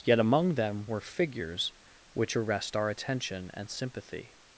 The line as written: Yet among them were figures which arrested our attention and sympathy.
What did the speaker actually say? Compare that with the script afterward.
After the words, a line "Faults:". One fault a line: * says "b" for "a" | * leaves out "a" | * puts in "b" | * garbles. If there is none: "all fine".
Yet among them were figures which arrest our attention and sympathy.
Faults:
* says "arrest" for "arrested"